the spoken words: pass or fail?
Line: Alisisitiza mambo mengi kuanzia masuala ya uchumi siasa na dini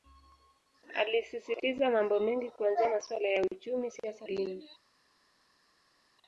fail